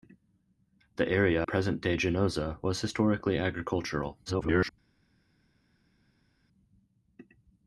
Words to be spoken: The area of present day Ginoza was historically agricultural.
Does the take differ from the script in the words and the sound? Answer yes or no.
yes